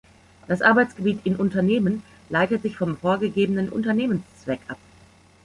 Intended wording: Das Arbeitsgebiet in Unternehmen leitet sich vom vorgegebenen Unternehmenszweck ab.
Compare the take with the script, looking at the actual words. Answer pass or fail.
pass